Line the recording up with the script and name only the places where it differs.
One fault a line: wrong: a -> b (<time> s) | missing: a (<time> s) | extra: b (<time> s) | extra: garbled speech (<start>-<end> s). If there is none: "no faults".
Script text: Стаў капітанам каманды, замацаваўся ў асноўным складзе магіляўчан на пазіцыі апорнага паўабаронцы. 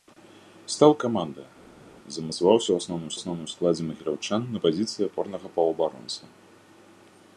missing: капітанам (0.9 s)
extra: асноўным (3.2 s)